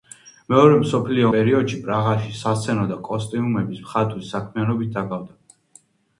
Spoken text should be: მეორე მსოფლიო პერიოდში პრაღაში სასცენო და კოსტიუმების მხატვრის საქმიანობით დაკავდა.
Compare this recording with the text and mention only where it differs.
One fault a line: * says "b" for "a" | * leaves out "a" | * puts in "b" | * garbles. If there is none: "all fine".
all fine